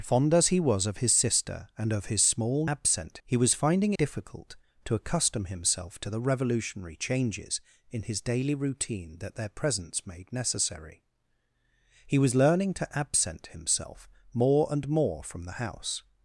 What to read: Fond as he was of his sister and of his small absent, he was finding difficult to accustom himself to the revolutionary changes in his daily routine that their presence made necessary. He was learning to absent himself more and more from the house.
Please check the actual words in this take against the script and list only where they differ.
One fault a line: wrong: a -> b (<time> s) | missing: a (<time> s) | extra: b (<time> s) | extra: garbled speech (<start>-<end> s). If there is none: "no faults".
no faults